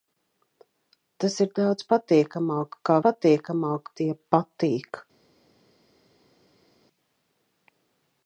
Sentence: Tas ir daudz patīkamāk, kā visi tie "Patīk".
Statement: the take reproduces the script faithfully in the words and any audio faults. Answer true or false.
false